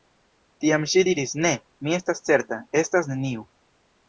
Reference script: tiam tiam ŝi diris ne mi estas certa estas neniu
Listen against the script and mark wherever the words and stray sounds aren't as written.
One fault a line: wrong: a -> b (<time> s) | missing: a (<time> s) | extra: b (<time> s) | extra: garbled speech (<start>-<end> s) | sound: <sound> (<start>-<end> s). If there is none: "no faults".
missing: tiam (0.9 s)